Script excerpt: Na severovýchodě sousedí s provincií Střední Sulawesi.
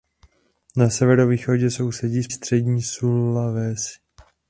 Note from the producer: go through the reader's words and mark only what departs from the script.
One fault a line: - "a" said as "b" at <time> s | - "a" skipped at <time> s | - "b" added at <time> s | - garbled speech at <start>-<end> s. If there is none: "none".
- "provincií" skipped at 2.3 s